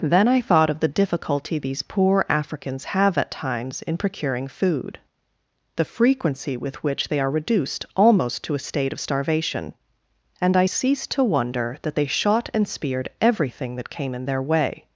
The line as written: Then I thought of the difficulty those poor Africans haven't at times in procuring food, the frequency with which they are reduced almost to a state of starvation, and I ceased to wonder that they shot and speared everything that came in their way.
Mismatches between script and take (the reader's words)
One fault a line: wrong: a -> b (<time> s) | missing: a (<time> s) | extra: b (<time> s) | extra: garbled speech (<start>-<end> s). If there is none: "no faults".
wrong: those -> these (1.6 s)
wrong: haven't -> have (2.9 s)